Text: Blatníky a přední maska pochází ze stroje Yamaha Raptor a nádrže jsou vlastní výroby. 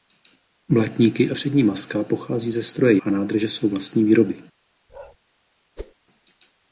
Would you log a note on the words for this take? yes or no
yes